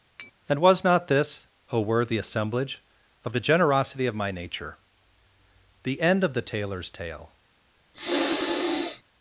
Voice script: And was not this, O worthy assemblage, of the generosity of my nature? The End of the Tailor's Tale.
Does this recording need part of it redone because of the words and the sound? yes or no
yes